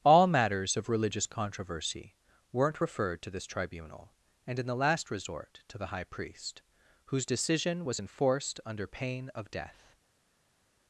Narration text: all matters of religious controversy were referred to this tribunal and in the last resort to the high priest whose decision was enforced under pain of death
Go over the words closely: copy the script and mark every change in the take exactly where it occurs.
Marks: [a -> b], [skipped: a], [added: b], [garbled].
all matters of religious controversy [were -> weren't] referred to this tribunal and in the last resort to the high priest whose decision was enforced under pain of death